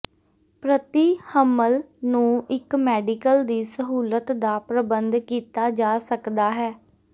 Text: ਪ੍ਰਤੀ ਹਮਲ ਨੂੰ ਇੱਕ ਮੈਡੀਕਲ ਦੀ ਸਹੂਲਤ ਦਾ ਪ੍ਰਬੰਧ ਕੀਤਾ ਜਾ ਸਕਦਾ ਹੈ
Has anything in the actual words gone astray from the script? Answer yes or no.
no